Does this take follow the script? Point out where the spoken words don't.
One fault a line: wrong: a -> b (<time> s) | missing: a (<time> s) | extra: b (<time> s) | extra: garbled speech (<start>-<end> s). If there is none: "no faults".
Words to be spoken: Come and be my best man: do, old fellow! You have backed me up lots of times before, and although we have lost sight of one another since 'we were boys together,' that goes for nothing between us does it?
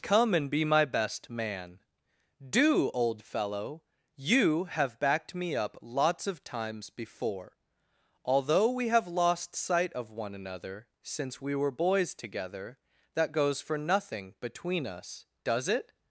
missing: and (7.5 s)